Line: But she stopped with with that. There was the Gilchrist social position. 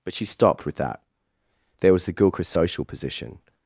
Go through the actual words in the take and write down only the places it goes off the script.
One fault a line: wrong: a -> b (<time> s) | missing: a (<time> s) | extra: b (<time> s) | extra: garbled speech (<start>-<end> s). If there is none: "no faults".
missing: with (0.8 s)